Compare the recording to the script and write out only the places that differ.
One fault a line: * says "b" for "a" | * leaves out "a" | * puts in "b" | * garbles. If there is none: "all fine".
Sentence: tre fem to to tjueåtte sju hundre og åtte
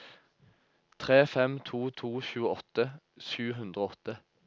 all fine